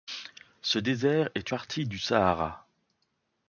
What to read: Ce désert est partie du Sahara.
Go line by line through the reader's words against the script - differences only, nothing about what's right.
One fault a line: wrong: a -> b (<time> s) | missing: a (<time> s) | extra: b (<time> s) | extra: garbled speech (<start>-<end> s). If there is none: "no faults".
no faults